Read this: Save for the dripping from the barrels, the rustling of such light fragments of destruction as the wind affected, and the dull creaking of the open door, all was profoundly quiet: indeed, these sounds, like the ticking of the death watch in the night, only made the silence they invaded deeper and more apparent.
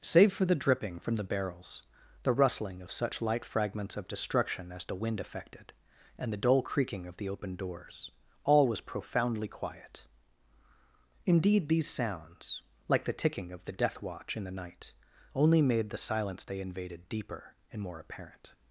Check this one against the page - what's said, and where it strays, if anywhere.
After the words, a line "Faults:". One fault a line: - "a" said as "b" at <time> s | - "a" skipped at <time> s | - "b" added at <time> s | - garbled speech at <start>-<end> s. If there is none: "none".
Save for the dripping from the barrels, the rustling of such light fragments of destruction as the wind affected, and the dull creaking of the open doors, all was profoundly quiet: indeed, these sounds, like the ticking of the death watch in the night, only made the silence they invaded deeper and more apparent.
Faults:
- "door" said as "doors" at 7.6 s